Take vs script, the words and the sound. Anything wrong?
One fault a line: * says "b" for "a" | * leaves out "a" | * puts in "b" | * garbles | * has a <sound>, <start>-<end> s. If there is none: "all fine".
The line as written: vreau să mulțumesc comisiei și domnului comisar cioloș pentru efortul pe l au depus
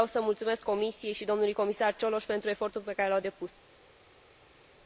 * puts in "care"